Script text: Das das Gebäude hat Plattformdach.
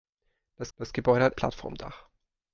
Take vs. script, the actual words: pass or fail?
pass